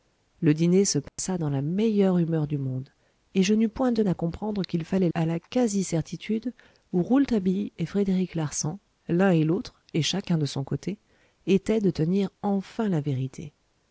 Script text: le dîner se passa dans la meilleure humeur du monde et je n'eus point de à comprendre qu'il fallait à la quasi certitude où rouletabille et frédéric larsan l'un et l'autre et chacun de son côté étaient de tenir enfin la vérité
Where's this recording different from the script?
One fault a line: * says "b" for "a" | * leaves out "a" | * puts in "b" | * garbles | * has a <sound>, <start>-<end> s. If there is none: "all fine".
* has a dropout, 1.1-1.2 s